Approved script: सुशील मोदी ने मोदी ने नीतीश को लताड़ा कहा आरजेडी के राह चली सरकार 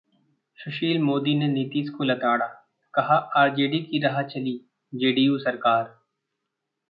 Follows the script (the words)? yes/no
no